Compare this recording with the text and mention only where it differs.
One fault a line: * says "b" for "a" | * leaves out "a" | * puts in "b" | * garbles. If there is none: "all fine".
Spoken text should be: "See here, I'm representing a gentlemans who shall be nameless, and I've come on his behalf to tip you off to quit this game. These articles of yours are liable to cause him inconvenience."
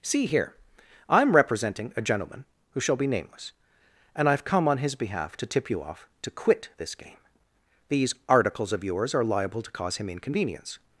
* says "gentleman" for "gentlemans"